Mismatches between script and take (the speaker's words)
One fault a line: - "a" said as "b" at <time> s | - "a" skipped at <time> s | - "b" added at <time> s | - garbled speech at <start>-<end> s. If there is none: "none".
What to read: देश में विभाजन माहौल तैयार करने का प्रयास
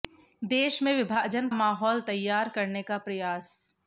none